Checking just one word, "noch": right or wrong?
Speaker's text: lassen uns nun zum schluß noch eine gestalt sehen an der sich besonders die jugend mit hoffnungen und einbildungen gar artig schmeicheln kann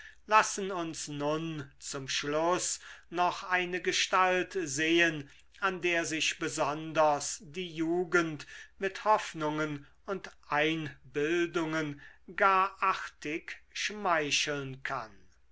right